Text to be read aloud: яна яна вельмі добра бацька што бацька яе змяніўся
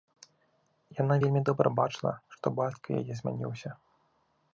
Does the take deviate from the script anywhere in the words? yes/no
yes